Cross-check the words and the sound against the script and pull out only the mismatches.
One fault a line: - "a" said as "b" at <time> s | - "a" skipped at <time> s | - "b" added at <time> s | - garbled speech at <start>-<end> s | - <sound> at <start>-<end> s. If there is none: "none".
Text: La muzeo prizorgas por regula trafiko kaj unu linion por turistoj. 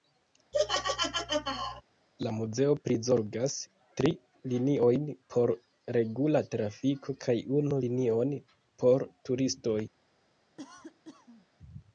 - laugh at 0.5-1.8 s
- "tri liniojn" added at 4.0 s
- cough at 10.6-11.5 s